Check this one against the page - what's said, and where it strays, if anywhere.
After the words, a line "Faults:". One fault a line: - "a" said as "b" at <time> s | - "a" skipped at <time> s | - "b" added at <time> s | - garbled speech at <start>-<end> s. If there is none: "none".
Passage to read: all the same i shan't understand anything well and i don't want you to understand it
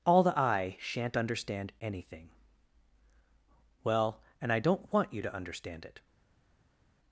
all the i shan't understand anything well and i don't want you to understand it
Faults:
- "same" skipped at 0.4 s